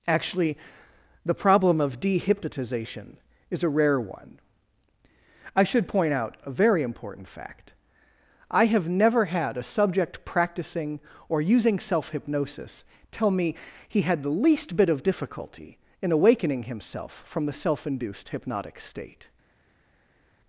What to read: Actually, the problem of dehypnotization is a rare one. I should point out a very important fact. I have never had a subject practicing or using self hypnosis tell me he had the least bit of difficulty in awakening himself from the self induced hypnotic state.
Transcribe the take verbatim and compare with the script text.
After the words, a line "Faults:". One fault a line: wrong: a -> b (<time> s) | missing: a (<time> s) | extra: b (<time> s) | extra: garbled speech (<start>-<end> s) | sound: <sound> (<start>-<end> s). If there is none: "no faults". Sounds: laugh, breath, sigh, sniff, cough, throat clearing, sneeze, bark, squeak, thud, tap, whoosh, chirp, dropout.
Actually, the problem of dehypnotization is a rare one. I should point out a very important fact. I have never had a subject practicing or using self hypnosis tell me he had the least bit of difficulty in awakening himself from the self induced hypnotic state.
Faults:
no faults